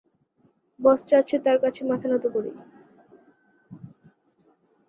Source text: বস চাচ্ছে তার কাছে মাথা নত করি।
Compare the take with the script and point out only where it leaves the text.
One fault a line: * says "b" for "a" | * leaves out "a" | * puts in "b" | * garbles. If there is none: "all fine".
all fine